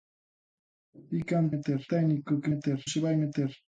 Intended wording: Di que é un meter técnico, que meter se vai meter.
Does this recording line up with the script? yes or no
yes